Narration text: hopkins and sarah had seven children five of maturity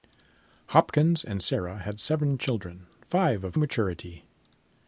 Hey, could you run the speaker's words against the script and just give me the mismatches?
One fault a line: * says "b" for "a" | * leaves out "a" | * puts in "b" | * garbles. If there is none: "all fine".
all fine